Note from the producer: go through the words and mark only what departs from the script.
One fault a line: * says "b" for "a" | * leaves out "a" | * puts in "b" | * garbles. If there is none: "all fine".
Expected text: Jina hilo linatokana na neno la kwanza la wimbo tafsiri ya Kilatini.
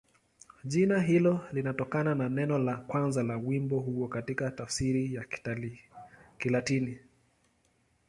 * puts in "huo katika"